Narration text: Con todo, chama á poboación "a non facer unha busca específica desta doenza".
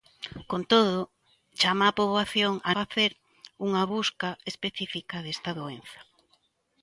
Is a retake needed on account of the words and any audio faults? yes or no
yes